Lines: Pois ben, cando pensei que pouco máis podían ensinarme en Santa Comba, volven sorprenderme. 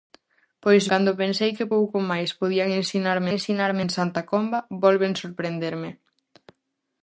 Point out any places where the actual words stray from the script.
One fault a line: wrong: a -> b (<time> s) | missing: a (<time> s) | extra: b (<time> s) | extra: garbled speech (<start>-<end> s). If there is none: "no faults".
missing: ben (0.8 s)
extra: ensinarme (3.4 s)